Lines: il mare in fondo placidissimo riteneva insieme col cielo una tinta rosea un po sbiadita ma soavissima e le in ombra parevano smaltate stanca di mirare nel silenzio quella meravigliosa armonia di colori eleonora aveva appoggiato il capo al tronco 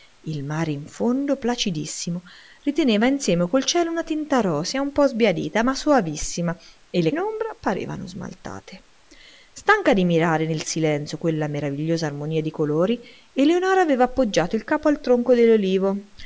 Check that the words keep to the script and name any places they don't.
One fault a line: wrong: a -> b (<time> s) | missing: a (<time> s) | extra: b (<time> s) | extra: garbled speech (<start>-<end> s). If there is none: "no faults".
no faults